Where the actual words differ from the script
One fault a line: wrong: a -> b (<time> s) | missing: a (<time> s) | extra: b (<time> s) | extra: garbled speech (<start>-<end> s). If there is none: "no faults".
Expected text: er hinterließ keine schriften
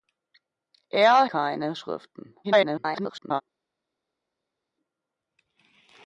missing: hinterließ (1.2 s)
extra: garbled speech (2.4-3.4 s)